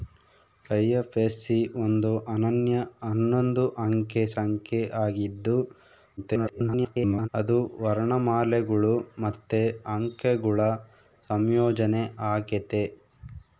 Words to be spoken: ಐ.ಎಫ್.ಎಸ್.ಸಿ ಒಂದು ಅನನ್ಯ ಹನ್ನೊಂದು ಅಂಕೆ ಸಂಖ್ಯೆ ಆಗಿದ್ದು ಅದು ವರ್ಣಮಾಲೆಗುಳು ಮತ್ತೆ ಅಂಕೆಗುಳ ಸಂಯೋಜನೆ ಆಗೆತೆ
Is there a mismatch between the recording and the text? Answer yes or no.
yes